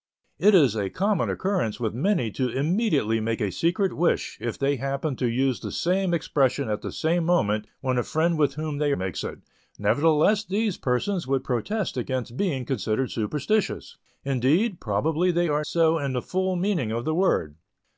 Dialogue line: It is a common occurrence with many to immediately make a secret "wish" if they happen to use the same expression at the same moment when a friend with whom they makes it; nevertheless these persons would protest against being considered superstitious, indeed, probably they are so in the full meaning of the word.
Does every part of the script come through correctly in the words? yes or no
yes